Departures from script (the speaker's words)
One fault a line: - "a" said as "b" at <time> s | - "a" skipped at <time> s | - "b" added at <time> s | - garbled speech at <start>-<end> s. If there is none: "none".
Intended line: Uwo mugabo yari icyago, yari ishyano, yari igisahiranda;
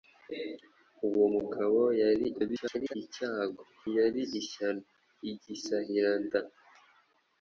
- garbled speech at 2.3-2.9 s
- "yari" skipped at 4.8 s